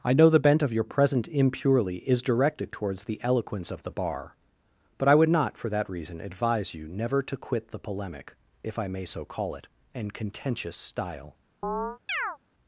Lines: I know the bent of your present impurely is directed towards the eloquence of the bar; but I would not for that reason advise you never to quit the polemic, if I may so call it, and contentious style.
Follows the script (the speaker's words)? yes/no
yes